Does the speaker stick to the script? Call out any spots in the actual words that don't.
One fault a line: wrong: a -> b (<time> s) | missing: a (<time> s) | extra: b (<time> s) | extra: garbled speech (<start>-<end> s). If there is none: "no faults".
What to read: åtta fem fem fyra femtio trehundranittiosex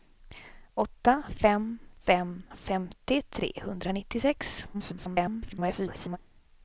missing: fyra (2.4 s)
extra: garbled speech (4.7-6.2 s)